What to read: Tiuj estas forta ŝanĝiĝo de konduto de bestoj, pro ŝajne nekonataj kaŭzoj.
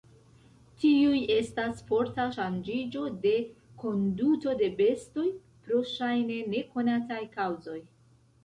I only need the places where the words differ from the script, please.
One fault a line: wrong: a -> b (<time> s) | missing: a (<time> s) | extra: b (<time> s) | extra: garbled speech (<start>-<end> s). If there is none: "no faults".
no faults